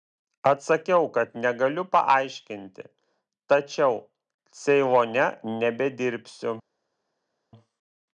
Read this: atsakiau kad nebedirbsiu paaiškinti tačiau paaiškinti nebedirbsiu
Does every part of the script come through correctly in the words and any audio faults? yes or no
no